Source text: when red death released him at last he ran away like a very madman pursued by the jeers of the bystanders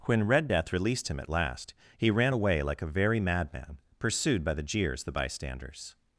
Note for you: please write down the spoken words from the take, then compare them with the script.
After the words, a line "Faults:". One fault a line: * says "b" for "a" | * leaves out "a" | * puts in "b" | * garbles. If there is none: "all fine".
when red death released him at last he ran away like a very madman pursued by the jeers the bystanders
Faults:
* leaves out "of"